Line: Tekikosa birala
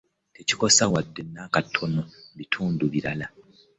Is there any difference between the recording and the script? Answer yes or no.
yes